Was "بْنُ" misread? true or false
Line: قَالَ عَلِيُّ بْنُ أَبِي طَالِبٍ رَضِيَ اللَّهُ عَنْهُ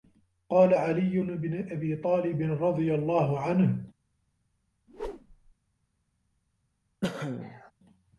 false